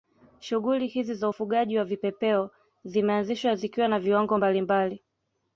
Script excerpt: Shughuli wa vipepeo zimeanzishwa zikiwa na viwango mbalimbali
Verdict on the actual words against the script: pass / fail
fail